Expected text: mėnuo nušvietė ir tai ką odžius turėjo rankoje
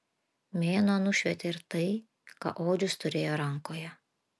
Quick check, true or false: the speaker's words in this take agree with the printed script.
true